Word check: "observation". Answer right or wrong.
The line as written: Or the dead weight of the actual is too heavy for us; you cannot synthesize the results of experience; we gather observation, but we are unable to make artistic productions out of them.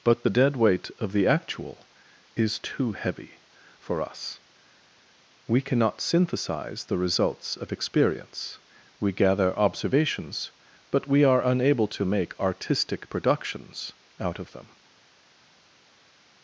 wrong